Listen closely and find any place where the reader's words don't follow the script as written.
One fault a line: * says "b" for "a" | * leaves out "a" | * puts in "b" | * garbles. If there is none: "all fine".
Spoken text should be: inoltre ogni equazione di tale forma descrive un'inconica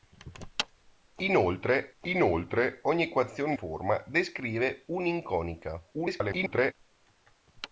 * puts in "inoltre"
* leaves out "di tale"
* garbles